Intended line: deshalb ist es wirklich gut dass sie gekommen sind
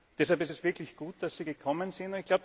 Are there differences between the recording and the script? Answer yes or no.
no